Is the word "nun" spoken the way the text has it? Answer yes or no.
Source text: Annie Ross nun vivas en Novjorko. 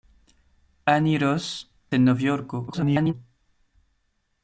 no